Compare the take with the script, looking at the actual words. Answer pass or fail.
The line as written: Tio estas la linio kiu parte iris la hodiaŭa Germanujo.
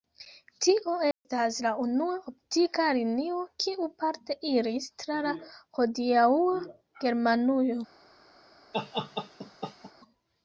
fail